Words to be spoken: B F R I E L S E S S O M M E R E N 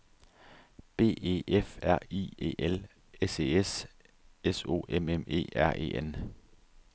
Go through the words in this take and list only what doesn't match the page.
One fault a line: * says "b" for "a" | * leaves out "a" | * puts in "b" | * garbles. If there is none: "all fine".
* puts in "E"